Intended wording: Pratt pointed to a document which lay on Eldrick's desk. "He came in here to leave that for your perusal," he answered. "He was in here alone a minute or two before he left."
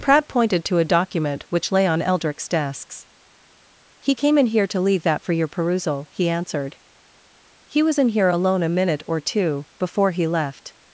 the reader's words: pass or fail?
fail